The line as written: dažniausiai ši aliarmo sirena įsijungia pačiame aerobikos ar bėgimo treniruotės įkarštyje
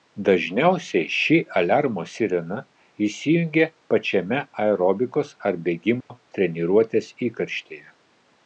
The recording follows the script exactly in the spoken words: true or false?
true